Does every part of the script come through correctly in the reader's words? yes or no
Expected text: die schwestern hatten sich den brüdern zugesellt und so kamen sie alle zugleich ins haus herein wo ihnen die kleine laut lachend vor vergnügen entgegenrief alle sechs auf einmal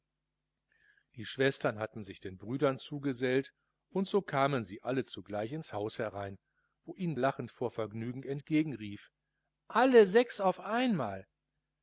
no